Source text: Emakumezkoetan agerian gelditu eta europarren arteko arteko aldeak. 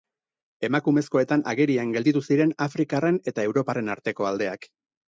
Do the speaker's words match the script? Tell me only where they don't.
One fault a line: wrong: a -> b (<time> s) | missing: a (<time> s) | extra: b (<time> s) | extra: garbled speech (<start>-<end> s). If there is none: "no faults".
extra: ziren afrikarren (2.3 s)
missing: arteko (4.3 s)